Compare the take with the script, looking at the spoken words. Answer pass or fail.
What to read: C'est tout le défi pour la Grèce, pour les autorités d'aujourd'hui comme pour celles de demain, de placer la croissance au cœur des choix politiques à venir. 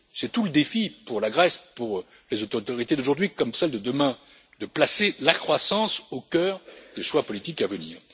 fail